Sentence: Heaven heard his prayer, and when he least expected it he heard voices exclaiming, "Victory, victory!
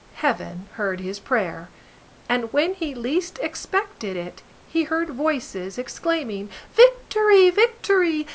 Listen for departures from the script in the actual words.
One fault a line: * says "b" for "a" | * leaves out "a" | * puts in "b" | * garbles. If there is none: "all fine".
all fine